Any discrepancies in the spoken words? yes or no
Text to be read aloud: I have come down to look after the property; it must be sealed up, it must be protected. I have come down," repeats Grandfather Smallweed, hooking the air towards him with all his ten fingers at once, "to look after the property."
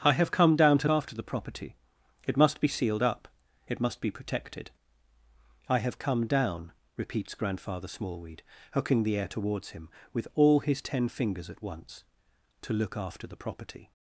yes